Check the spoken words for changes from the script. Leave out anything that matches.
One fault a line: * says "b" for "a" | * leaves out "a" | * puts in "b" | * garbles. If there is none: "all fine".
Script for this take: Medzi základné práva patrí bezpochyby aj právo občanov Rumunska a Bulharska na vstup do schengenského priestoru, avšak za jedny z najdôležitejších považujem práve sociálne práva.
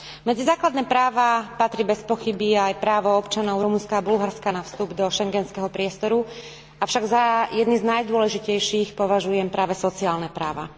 all fine